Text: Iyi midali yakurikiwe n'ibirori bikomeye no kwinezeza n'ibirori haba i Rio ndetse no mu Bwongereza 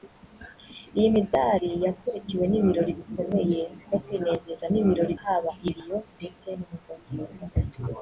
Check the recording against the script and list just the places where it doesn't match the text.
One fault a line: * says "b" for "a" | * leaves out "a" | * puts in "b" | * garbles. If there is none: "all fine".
all fine